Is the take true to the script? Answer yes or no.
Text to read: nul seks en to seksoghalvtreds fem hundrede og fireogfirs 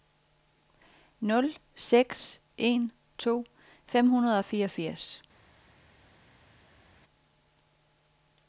no